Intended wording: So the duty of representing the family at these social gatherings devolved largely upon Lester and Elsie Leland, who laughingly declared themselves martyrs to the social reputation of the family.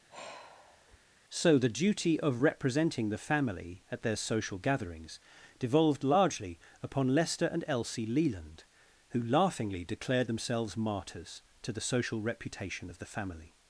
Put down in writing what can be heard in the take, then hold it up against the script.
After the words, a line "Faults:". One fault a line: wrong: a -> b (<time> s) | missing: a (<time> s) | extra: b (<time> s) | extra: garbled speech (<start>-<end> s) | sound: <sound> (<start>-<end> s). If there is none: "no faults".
So the duty of representing the family at their social gatherings devolved largely upon Lester and Elsie Leland, who laughingly declared themselves martyrs to the social reputation of the family.
Faults:
sound: sigh (0.1-1.0 s)
wrong: these -> their (4.0 s)